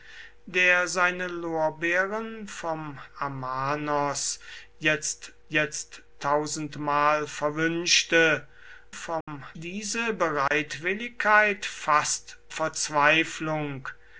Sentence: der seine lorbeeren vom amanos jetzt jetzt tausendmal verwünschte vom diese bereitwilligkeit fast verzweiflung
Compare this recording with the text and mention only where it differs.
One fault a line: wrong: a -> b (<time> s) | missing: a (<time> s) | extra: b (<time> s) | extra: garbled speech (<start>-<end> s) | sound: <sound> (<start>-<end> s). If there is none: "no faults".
sound: dropout (9.2-9.3 s)
sound: dropout (10.5-10.5 s)